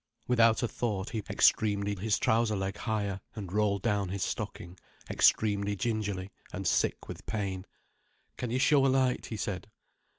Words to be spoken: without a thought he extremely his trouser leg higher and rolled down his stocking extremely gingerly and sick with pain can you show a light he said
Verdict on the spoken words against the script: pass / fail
pass